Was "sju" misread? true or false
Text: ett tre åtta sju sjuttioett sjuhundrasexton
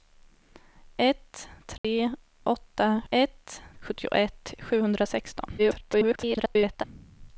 true